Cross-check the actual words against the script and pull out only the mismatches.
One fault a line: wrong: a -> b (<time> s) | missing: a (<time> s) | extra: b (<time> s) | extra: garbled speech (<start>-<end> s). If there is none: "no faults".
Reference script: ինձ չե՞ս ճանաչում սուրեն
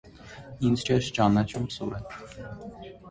no faults